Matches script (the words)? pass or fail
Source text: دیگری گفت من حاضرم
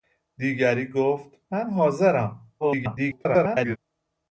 fail